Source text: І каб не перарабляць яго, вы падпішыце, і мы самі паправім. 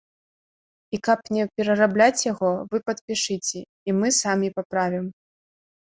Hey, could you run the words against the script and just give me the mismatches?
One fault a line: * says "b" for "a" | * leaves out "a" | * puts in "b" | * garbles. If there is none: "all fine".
all fine